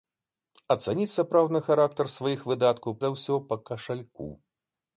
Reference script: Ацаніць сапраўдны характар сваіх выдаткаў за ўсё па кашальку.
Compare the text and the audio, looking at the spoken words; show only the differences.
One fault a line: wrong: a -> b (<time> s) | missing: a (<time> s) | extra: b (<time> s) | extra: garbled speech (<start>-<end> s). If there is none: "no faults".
no faults